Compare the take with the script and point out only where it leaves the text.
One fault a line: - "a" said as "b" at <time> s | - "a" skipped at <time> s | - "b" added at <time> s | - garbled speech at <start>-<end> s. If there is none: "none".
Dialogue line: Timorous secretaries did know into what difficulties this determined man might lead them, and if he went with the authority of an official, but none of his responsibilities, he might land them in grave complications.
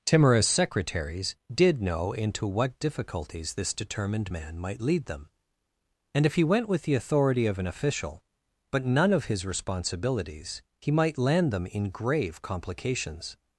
none